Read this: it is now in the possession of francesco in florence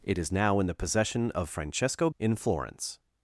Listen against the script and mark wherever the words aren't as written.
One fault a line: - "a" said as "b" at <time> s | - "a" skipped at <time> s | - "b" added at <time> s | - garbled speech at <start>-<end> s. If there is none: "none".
none